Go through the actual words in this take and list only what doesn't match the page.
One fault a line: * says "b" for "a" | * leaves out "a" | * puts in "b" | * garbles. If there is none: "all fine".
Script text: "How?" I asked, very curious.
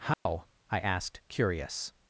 * leaves out "very"